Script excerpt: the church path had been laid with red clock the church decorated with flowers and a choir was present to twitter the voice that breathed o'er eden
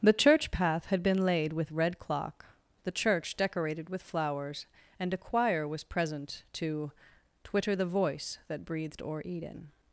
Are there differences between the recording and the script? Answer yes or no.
no